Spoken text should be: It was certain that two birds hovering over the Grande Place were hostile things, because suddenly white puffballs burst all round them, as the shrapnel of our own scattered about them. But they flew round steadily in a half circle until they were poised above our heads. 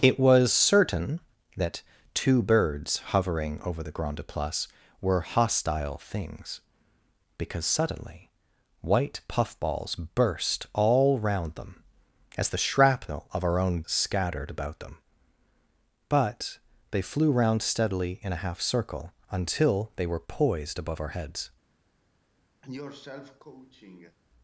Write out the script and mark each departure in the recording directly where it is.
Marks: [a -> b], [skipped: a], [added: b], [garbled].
It was certain that two birds hovering over the Grande Place were hostile things, because suddenly white puffballs burst all round them, as the shrapnel of our own scattered about them. But they flew round steadily in a half circle until they were poised above our heads.